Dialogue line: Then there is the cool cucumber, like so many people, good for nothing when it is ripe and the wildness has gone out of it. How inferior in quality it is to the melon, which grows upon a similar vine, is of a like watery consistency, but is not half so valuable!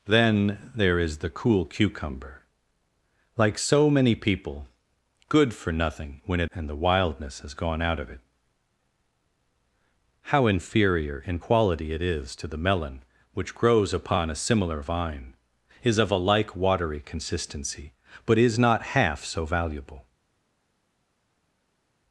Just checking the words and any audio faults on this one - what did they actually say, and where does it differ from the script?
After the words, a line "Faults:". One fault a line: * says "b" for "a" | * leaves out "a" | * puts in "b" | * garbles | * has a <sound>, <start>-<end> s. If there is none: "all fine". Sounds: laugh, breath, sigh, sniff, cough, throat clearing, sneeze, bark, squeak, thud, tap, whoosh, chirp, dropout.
Then there is the cool cucumber, like so many people, good for nothing when it and the wildness has gone out of it. How inferior in quality it is to the melon, which grows upon a similar vine, is of a like watery consistency, but is not half so valuable!
Faults:
* leaves out "is ripe"